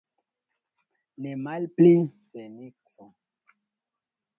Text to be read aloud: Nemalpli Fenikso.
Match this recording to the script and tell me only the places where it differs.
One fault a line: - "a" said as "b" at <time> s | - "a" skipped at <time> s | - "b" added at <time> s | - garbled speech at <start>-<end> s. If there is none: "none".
none